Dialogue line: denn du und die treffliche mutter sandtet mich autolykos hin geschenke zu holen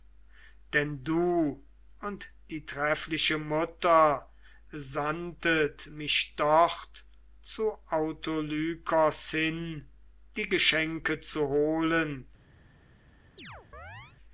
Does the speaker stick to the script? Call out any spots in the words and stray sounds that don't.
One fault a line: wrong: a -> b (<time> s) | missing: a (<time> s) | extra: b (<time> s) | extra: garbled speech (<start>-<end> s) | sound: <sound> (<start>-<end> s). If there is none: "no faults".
extra: dort zu (6.4 s)
extra: die (10.4 s)
sound: chirp (13.4-14.2 s)